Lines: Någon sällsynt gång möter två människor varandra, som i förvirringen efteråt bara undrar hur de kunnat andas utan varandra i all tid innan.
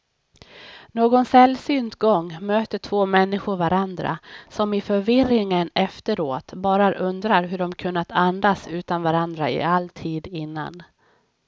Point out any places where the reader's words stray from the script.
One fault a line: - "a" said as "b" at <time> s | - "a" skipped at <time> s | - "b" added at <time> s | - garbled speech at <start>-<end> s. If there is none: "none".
none